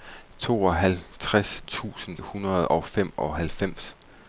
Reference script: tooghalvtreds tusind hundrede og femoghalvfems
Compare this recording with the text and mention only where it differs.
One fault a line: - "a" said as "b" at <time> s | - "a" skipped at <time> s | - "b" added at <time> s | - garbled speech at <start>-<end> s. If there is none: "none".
none